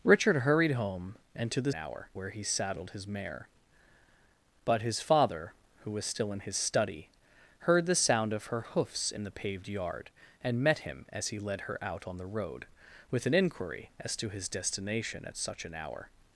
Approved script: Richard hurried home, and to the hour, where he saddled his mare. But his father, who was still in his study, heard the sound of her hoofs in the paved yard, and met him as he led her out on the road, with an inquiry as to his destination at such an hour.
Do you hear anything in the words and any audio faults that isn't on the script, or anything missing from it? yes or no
no